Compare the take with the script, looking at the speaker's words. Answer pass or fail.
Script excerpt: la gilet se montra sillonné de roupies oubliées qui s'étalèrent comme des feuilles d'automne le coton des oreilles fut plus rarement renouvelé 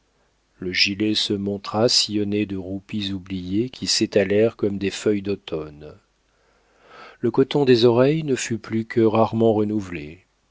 fail